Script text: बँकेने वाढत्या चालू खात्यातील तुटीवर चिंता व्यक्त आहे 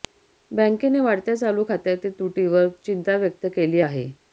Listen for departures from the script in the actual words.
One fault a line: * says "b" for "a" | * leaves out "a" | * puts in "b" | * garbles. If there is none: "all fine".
* puts in "केली"